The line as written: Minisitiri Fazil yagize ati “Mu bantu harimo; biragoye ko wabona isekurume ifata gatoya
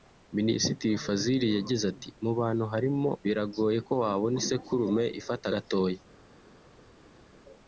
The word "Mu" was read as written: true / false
true